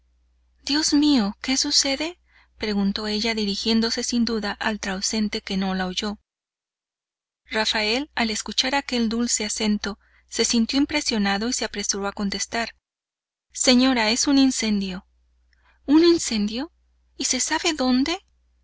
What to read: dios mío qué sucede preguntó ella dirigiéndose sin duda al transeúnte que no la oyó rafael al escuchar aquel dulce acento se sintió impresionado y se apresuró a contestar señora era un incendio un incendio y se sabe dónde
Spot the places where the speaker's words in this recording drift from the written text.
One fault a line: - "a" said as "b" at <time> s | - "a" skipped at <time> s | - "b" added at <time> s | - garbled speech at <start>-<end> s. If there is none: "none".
- "era" said as "es" at 14.1 s